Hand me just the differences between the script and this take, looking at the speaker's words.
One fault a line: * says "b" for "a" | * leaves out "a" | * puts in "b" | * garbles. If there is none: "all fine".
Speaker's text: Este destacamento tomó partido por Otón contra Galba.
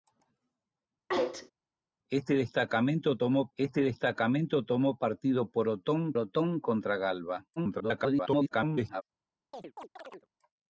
* puts in "este destacamento tomó"
* puts in "Otón"
* garbles